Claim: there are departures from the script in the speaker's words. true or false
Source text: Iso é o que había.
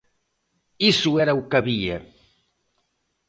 true